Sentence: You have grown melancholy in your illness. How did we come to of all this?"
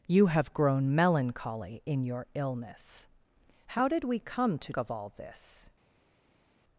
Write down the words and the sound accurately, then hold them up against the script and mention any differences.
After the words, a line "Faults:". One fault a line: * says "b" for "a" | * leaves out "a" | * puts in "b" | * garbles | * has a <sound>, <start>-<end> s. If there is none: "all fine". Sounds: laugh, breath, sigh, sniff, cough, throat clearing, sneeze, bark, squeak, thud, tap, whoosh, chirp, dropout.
You have grown melancholy in your illness. How did we come to of all this?"
Faults:
all fine